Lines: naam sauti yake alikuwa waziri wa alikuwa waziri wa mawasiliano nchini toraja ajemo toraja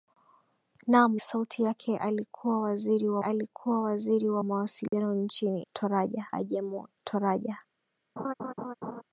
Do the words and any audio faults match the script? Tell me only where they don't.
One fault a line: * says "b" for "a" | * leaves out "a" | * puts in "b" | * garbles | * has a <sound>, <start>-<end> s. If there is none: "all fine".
* has a dropout, 4.9-4.9 s
* has a laugh, 8.2-9.0 s